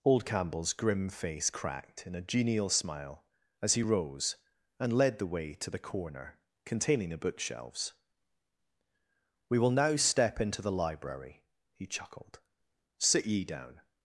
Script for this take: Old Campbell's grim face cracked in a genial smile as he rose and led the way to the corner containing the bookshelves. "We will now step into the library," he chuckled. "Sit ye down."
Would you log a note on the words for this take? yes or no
no